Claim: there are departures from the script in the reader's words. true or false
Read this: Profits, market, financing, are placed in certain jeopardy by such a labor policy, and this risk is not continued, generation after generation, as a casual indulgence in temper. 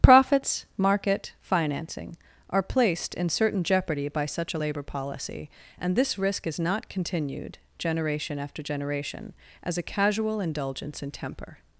false